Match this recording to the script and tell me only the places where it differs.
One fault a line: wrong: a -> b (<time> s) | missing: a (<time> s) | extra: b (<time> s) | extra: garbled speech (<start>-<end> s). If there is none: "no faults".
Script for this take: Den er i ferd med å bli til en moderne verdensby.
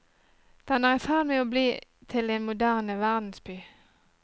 no faults